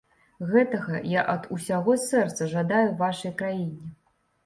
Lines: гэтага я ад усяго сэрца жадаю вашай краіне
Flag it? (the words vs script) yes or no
no